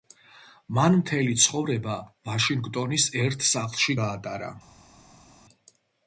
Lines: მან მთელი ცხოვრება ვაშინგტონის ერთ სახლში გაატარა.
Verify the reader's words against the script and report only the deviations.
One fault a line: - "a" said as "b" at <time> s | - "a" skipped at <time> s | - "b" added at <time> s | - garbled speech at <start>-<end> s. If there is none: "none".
none